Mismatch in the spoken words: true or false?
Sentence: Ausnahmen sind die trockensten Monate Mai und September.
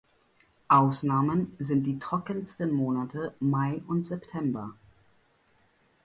false